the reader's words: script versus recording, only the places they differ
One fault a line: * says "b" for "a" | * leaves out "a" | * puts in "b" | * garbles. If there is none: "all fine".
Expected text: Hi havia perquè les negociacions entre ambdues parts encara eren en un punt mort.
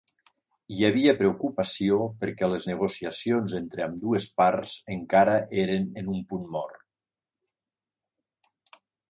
* puts in "preocupació"